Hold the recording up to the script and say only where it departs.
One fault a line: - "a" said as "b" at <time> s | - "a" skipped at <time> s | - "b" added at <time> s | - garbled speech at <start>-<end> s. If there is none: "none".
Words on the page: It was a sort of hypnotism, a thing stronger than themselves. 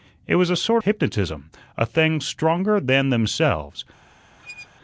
- "of" skipped at 0.8 s